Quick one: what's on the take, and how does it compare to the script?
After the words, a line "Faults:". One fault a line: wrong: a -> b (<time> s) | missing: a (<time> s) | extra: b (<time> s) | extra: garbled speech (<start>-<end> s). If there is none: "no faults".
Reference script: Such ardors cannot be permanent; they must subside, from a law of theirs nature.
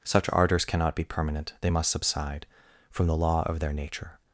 Such ardors cannot be permanent; they must subside, from the law of their nature.
Faults:
wrong: a -> the (3.1 s)
wrong: theirs -> their (3.6 s)